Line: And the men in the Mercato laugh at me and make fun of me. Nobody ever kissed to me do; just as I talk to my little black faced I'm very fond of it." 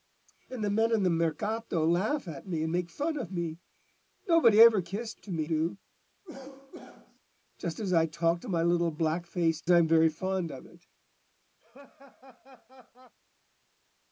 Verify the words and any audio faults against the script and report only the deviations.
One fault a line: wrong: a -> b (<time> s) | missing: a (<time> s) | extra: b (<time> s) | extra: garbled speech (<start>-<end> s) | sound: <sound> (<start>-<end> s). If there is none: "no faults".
sound: cough (6.2-7.2 s)
sound: laugh (11.6-13.1 s)